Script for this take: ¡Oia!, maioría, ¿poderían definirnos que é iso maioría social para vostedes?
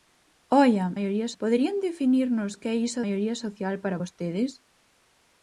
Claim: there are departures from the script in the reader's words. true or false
false